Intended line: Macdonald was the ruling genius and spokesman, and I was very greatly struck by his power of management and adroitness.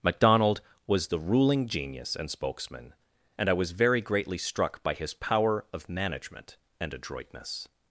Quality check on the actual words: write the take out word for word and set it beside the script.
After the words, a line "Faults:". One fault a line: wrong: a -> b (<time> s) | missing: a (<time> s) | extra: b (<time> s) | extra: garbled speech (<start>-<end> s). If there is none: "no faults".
Macdonald was the ruling genius and spokesman, and I was very greatly struck by his power of management and adroitness.
Faults:
no faults